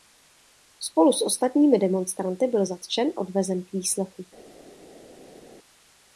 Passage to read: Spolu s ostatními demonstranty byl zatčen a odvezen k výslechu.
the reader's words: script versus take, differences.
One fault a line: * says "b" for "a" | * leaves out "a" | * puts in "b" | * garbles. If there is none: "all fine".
* leaves out "a"